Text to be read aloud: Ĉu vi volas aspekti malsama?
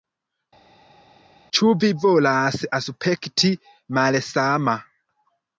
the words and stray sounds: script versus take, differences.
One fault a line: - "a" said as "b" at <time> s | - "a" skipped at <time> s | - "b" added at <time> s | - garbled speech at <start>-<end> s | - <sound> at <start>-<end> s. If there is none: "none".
none